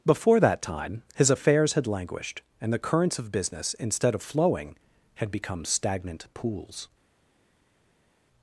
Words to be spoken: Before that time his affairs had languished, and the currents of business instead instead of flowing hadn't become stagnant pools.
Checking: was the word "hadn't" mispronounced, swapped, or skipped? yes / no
yes